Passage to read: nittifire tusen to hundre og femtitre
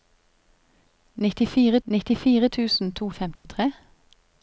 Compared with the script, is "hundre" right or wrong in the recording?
wrong